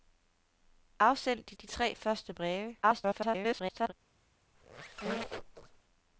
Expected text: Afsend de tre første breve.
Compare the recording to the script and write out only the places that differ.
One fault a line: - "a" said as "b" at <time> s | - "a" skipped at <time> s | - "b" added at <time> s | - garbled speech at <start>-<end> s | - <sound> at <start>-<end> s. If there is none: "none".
- "de" added at 1.5 s
- garbled speech at 2.8-3.9 s
- squeak at 4.5-5.8 s